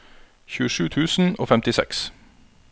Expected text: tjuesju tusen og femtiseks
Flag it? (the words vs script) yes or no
no